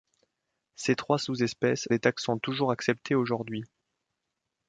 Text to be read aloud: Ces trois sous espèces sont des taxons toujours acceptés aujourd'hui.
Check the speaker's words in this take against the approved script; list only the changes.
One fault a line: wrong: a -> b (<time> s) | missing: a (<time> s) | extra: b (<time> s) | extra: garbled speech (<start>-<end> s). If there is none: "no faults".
missing: sont (1.9 s)